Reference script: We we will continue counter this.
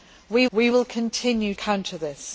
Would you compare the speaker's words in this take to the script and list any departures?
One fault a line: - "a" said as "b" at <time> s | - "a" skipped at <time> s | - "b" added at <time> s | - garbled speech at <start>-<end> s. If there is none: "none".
none